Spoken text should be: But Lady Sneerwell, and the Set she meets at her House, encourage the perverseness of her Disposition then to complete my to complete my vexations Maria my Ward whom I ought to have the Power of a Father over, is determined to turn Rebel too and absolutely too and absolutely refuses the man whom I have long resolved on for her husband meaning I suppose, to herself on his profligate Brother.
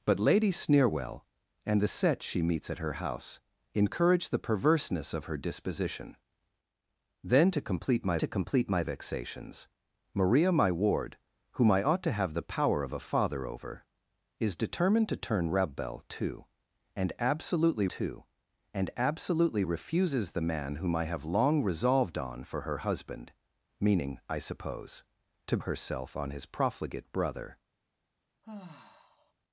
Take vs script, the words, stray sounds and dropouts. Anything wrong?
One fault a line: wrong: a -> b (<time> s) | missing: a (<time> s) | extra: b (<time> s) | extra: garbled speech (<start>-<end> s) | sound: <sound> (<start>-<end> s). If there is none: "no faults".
sound: sigh (28.4-29.3 s)